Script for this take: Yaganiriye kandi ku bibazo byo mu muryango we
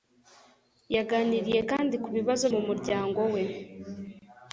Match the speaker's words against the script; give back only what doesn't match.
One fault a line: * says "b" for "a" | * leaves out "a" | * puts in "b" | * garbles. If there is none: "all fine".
* leaves out "byo"